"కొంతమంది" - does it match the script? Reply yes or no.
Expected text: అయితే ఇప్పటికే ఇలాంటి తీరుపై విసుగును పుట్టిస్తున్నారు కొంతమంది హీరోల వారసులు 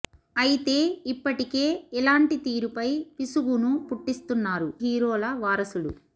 no